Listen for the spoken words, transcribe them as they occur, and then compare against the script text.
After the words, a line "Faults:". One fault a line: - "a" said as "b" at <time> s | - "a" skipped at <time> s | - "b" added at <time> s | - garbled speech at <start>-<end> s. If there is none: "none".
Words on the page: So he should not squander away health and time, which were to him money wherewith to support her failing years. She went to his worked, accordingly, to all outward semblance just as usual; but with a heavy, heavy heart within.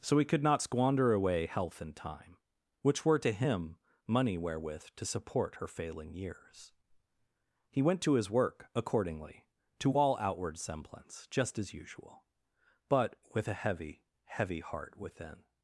So he could not squander away health and time, which were to him money wherewith to support her failing years. He went to his work, accordingly, to all outward semblance just as usual; but with a heavy, heavy heart within.
Faults:
- "should" said as "could" at 0.2 s
- "She" said as "He" at 7.7 s
- "worked" said as "work" at 8.3 s